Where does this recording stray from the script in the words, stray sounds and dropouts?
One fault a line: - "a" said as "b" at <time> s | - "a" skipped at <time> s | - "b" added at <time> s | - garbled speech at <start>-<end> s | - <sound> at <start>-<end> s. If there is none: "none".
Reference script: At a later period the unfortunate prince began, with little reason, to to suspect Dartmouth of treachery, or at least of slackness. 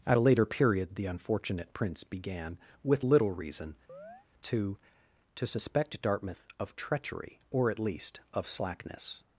- chirp at 3.9-4.3 s